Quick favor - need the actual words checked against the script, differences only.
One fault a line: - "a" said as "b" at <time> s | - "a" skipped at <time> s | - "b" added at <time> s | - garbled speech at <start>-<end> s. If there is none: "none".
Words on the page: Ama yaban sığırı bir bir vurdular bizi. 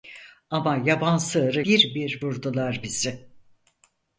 none